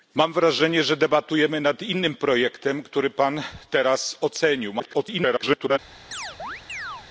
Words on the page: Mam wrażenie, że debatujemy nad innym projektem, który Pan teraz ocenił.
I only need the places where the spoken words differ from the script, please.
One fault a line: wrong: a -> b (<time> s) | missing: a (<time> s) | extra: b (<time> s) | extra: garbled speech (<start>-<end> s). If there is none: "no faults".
extra: garbled speech (4.8-5.8 s)